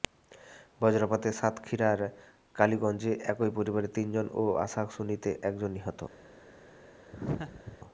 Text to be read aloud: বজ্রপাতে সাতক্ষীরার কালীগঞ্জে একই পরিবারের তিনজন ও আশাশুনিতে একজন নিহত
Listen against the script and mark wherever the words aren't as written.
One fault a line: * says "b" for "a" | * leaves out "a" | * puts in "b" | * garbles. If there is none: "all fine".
all fine